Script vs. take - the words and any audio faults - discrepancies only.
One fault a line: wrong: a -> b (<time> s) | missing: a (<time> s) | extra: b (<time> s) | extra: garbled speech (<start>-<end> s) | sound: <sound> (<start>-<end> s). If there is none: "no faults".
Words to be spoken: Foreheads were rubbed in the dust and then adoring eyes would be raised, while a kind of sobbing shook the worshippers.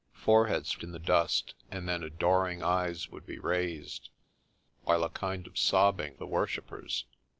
missing: were rubbed (0.8 s)
missing: shook (6.2 s)